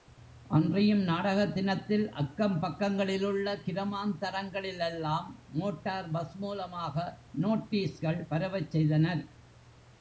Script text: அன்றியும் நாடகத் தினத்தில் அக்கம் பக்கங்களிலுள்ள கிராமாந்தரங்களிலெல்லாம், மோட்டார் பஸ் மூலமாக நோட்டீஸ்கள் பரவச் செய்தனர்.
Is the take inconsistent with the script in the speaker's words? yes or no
no